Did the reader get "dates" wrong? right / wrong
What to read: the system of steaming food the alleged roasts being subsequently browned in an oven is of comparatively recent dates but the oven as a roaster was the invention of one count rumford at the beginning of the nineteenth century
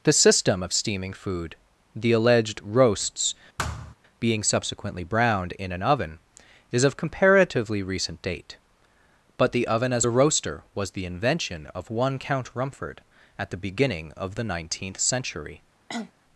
wrong